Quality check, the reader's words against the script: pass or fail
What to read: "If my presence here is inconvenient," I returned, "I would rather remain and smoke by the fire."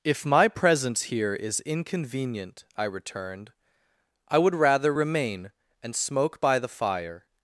pass